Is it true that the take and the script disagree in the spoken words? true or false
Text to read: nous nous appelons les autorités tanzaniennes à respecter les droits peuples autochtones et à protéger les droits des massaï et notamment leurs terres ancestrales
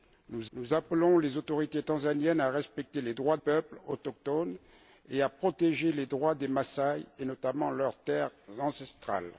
false